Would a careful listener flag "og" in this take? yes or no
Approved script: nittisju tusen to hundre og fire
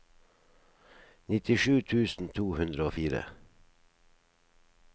no